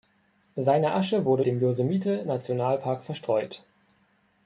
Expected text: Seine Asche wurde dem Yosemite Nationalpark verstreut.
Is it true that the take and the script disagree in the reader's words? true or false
false